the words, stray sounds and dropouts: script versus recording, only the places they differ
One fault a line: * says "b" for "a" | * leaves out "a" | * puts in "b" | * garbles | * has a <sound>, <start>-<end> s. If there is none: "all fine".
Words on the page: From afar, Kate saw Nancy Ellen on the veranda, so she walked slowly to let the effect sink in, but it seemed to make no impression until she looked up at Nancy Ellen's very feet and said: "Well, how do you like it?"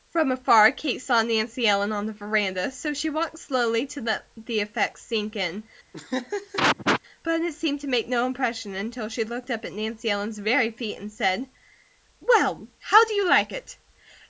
* has a laugh, 5.9-7.0 s